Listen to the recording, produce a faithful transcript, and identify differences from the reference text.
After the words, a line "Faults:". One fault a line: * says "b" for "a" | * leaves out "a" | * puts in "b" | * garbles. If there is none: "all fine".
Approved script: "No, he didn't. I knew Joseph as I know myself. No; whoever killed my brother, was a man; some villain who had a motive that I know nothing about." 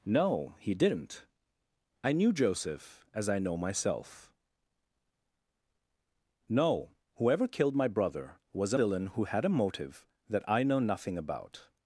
"No, he didn't. I knew Joseph as I know myself. No; whoever killed my brother, was a villain who had a motive that I know nothing about."
Faults:
* leaves out "man some"